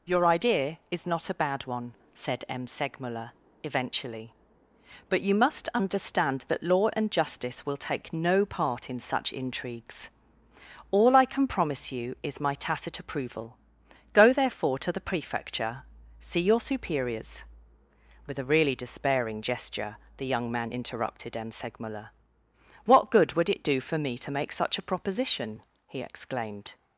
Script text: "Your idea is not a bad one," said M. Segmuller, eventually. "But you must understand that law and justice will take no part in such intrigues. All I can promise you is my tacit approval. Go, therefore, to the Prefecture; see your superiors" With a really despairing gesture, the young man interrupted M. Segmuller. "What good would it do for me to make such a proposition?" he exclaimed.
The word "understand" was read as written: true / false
true